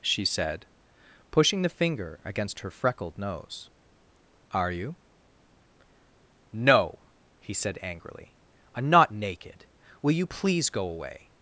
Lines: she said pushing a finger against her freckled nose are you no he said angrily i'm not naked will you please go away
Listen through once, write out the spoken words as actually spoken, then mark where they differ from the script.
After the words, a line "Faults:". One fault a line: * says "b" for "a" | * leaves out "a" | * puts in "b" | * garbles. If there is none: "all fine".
she said pushing the finger against her freckled nose are you no he said angrily i'm not naked will you please go away
Faults:
* says "the" for "a"